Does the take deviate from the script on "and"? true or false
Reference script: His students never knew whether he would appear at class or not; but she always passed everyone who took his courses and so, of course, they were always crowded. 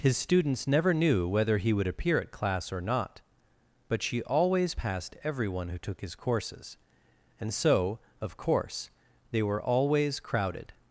false